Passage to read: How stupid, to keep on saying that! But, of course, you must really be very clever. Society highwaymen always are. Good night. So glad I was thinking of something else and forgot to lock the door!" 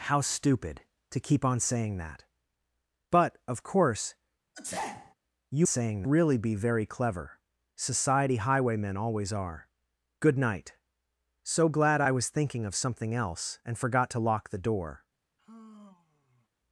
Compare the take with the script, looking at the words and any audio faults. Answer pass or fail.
fail